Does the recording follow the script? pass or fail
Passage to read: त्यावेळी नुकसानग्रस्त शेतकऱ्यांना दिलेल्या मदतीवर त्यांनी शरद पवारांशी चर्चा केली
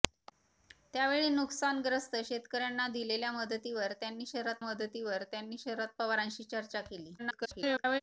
fail